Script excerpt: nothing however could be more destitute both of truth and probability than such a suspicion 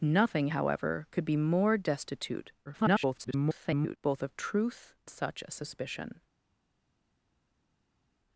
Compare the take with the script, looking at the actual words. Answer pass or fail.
fail